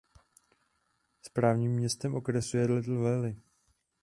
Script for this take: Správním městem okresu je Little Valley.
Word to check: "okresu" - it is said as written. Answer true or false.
true